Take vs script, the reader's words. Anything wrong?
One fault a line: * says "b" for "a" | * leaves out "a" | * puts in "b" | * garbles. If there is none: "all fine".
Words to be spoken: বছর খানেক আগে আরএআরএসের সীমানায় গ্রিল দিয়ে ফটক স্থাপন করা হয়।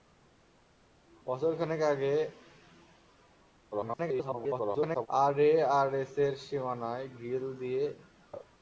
* garbles
* leaves out "ফটক স্থাপন করা"